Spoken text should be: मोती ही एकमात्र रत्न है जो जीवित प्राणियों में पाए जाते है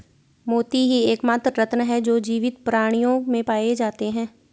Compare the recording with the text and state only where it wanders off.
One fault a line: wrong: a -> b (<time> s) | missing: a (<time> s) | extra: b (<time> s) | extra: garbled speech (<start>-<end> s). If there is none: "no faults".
no faults